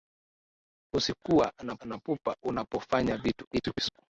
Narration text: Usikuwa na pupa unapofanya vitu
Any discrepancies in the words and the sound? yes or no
yes